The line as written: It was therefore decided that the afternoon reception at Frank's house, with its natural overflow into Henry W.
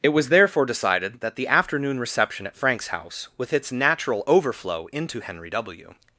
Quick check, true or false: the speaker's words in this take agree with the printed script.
true